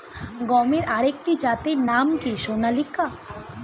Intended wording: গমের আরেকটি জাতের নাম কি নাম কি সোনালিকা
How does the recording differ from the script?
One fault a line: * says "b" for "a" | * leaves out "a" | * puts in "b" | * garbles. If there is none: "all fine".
* leaves out "নাম কি"